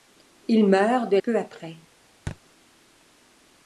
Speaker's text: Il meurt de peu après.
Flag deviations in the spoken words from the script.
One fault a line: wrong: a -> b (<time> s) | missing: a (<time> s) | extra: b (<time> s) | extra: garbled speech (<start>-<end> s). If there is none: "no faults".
no faults